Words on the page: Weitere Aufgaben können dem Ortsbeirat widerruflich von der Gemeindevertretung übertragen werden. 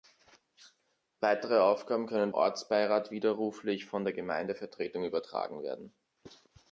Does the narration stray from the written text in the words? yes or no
yes